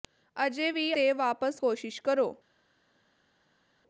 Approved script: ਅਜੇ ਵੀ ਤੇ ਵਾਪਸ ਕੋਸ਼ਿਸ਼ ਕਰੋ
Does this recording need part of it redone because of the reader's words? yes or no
no